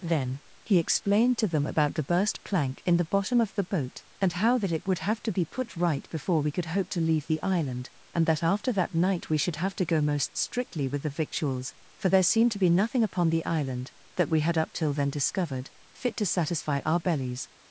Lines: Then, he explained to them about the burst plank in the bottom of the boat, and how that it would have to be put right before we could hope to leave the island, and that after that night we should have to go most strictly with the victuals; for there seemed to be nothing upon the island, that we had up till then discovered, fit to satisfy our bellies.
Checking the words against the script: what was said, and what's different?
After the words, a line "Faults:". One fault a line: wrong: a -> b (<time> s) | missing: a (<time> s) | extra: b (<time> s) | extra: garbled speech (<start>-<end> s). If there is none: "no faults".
Then, he explained to them about the burst plank in the bottom of the boat, and how that it would have to be put right before we could hope to leave the island, and that after that night we should have to go most strictly with the victuals; for there seemed to be nothing upon the island, that we had up till then discovered, fit to satisfy our bellies.
Faults:
no faults